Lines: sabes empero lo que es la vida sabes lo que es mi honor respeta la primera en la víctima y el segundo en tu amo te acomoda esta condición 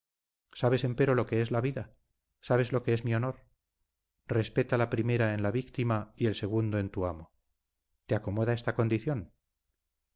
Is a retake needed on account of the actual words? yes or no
no